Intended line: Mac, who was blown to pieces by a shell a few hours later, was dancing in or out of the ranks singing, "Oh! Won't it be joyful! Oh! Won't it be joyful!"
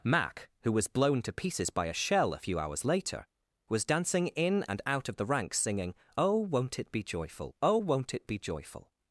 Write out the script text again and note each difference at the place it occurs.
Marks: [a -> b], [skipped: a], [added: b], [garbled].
Mac, who was blown to pieces by a shell a few hours later, was dancing in [or -> and] out of the ranks singing, "Oh! Won't it be joyful! Oh! Won't it be joyful!"